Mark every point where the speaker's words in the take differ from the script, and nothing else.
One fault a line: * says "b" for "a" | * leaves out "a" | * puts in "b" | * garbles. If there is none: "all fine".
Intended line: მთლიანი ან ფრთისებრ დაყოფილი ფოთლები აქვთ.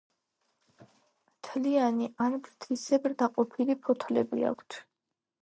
all fine